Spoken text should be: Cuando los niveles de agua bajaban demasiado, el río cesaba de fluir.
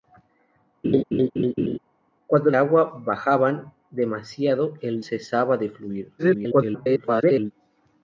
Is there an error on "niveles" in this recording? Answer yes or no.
yes